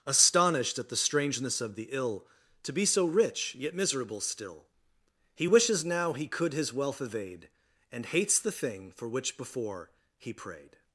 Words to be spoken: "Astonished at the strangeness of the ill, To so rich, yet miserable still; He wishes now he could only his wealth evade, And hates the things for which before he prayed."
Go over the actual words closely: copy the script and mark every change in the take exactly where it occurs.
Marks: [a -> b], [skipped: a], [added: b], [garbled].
"Astonished at the strangeness of the ill, To [added: be] so rich, yet miserable still; He wishes now he could [skipped: only] his wealth evade, And hates the [things -> thing] for which before he prayed."